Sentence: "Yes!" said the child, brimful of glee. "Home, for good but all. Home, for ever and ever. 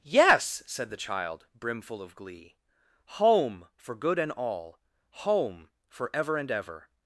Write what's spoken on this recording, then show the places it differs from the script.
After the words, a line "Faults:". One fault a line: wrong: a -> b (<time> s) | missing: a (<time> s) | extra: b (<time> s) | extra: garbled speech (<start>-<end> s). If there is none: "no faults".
"Yes!" said the child, brimful of glee. "Home, for good and all. Home, for ever and ever.
Faults:
wrong: but -> and (4.2 s)